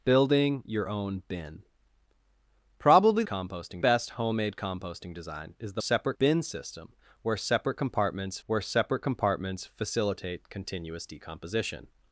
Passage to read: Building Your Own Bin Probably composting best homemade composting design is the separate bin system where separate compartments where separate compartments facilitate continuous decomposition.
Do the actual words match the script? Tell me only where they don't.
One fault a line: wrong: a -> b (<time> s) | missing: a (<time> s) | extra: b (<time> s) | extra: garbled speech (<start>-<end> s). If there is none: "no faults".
no faults